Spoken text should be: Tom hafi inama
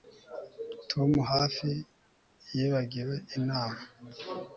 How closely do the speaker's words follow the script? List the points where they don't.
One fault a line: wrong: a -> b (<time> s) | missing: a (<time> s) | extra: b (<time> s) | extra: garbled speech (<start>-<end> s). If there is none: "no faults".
extra: yibagiwe (2.5 s)